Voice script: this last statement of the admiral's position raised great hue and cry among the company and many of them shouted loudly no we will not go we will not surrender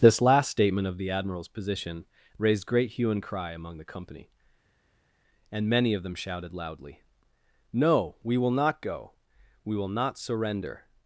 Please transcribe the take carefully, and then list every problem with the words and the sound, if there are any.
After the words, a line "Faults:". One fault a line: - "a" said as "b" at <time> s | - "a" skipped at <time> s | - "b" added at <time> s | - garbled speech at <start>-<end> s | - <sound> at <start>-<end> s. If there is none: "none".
this last statement of the admiral's position raised great hue and cry among the company and many of them shouted loudly no we will not go we will not surrender
Faults:
none